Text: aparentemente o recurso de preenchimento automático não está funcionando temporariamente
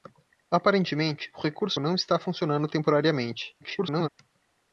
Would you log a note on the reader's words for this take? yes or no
yes